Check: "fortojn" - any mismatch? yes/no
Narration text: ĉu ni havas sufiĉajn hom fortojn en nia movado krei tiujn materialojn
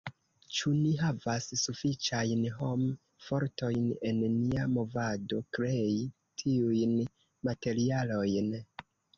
no